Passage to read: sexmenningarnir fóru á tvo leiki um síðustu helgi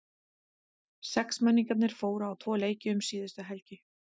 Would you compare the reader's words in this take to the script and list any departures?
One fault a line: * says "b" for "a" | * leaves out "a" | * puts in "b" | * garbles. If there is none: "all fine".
all fine